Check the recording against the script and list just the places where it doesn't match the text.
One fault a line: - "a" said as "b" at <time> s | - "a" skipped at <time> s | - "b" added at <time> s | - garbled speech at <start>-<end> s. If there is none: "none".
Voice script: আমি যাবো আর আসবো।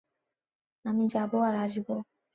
none